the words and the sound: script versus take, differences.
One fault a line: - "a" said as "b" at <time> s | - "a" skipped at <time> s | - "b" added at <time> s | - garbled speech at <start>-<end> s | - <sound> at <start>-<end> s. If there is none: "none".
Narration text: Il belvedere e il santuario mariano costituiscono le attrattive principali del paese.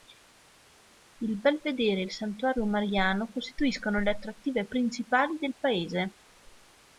none